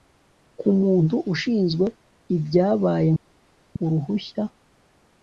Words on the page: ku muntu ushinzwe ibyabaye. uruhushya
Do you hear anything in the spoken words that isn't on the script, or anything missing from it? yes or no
no